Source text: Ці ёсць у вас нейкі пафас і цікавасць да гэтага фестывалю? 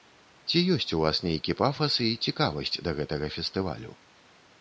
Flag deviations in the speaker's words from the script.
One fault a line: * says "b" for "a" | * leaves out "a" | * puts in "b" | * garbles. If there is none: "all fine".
all fine